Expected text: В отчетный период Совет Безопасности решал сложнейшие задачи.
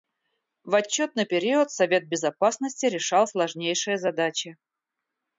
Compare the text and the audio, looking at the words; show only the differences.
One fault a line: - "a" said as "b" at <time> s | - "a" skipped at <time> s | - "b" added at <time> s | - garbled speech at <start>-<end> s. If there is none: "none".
none